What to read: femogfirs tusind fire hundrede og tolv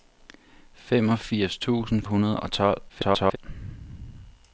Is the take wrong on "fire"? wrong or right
wrong